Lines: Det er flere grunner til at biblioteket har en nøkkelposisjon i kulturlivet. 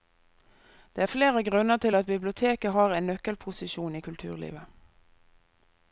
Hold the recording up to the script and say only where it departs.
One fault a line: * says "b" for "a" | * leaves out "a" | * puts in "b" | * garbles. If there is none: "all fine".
all fine